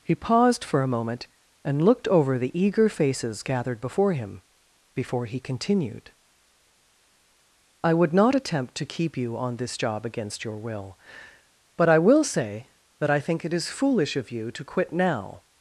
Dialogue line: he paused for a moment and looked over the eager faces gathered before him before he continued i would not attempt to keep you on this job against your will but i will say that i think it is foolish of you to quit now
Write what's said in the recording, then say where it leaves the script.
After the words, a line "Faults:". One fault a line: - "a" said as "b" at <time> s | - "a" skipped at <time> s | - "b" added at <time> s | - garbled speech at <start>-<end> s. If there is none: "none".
he paused for a moment and looked over the eager faces gathered before him before he continued i would not attempt to keep you on this job against your will but i will say that i think it is foolish of you to quit now
Faults:
none